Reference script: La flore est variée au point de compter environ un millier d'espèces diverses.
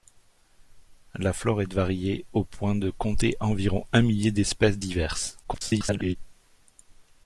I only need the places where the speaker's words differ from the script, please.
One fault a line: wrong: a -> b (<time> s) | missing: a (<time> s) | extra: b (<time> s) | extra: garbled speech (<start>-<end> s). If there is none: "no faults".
extra: garbled speech (5.4-6.2 s)